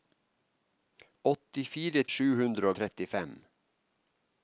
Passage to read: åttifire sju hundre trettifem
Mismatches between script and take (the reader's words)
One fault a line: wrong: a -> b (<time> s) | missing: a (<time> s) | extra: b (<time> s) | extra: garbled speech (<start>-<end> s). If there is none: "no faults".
no faults